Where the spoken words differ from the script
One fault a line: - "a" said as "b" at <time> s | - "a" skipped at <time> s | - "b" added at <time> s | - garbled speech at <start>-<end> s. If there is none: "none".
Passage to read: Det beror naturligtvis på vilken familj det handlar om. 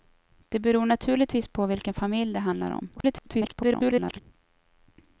- garbled speech at 3.0-4.2 s